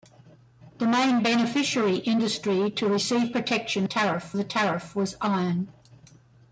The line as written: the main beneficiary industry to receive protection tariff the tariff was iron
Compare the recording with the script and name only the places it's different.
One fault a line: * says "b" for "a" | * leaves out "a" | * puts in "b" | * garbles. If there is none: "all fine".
all fine